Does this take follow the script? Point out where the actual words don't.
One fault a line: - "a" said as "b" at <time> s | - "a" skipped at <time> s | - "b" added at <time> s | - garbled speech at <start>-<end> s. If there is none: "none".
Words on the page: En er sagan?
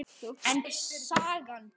none